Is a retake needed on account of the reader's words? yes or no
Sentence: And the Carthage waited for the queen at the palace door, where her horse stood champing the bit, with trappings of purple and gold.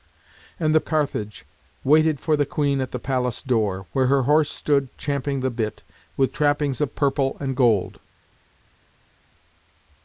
no